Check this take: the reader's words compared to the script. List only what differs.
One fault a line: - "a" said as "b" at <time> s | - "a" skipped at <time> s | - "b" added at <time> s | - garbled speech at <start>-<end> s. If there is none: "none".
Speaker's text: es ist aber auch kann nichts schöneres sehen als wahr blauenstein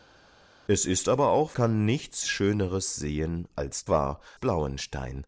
none